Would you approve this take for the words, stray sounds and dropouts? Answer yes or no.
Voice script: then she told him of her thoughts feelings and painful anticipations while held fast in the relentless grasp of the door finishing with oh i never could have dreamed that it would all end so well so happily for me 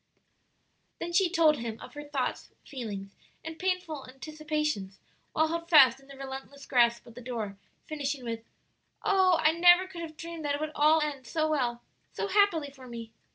yes